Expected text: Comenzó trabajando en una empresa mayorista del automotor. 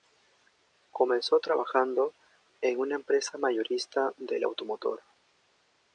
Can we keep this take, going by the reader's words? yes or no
yes